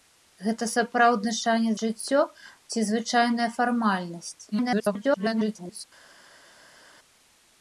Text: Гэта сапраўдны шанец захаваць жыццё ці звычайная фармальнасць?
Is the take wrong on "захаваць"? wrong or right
wrong